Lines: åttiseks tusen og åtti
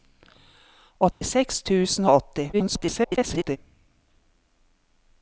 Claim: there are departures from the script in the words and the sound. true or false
true